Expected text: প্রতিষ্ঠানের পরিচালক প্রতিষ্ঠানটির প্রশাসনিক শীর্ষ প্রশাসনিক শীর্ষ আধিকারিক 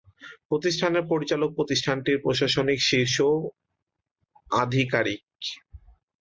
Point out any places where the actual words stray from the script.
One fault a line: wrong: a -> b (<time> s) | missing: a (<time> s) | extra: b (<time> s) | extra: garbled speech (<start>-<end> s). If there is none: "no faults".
missing: প্রশাসনিক শীর্ষ (3.2 s)